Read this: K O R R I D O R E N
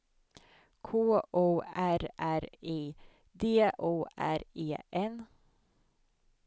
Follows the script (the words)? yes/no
yes